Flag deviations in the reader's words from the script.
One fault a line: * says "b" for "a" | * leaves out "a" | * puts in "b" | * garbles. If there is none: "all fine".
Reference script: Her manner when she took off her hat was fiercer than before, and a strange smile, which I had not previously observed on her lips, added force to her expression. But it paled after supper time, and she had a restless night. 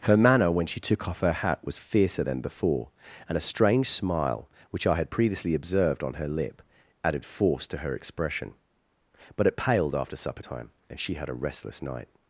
* leaves out "not"
* says "lip" for "lips"